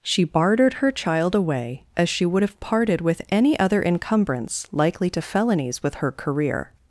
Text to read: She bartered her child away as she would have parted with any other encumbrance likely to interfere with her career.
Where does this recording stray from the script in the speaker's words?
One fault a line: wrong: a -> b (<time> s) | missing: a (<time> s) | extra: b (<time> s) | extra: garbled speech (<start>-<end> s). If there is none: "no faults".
wrong: interfere -> felonies (5.2 s)